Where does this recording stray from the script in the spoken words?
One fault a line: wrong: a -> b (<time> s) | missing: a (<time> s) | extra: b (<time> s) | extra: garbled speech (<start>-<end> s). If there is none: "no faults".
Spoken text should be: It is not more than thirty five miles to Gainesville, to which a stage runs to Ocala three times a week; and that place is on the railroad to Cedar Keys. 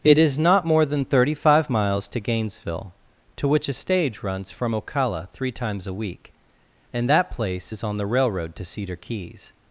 wrong: to -> from (4.5 s)